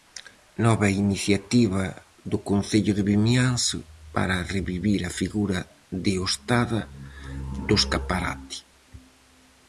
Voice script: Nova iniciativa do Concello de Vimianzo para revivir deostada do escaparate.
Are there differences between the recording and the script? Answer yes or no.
yes